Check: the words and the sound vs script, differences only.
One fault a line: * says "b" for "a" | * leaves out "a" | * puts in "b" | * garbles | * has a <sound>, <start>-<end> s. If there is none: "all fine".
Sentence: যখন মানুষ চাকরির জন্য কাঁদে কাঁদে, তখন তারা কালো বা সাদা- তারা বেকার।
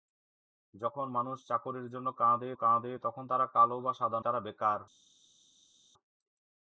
all fine